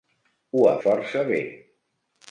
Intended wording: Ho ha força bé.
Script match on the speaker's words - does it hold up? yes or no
yes